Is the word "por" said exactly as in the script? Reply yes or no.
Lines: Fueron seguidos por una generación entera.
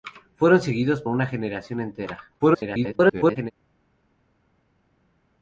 no